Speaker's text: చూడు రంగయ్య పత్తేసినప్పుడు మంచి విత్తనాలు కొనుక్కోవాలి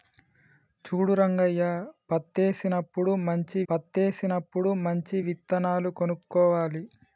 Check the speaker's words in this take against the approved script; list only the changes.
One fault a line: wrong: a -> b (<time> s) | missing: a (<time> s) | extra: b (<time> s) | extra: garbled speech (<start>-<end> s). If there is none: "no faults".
extra: పత్తేసినప్పుడు మంచి (3.7 s)